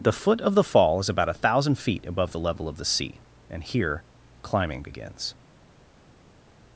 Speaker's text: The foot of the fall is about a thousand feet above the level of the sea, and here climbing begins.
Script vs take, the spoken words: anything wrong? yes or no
no